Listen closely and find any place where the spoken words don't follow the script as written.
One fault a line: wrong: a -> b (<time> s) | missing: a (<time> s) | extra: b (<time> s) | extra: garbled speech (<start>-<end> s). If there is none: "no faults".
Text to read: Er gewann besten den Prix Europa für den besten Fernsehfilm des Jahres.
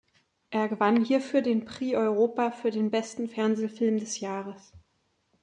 wrong: besten -> hierfür (1.0 s)